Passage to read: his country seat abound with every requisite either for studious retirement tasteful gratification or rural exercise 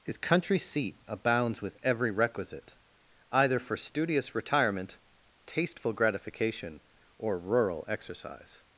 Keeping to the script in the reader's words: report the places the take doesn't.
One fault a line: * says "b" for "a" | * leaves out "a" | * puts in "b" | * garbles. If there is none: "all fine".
* says "abounds" for "abound"